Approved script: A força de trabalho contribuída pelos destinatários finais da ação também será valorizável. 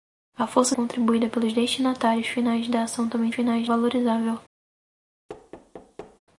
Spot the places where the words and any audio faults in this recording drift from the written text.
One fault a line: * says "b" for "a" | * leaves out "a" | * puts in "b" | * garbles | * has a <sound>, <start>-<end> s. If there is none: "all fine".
* leaves out "de trabalho"
* says "finais" for "será"
* has a thud, 5.3-6.2 s